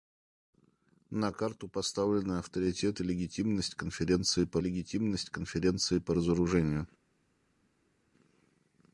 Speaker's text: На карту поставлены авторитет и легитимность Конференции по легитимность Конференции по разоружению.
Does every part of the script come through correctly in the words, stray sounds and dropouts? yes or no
yes